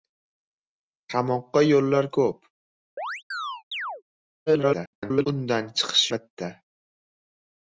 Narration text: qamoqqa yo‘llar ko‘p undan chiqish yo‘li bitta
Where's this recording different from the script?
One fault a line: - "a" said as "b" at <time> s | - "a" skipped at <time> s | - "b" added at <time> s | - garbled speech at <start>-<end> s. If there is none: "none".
- garbled speech at 4.5-5.3 s
- "yo‘li" skipped at 6.1 s